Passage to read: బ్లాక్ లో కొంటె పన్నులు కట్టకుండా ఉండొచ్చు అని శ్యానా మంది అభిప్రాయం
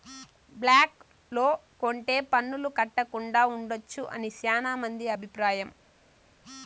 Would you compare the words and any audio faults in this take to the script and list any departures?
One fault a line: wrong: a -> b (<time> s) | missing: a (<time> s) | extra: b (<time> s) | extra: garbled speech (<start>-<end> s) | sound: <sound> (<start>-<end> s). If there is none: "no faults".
no faults